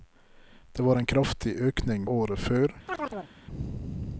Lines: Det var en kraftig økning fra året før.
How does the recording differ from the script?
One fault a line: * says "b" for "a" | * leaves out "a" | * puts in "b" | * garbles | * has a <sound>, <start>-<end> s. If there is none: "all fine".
* leaves out "fra"
* has a chirp, 2.9-3.3 s